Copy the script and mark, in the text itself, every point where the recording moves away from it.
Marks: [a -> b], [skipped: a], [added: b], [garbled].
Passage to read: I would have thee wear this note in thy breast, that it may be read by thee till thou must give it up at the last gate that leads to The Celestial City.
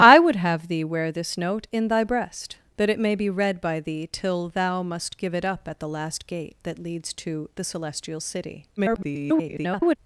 I would have thee wear this note in thy breast, that it may be read by thee till thou must give it up at the last gate that leads to The Celestial City. [garbled]